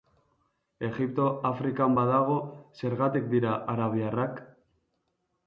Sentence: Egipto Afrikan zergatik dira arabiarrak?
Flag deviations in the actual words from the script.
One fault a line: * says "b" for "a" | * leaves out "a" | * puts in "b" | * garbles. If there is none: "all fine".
* puts in "badago"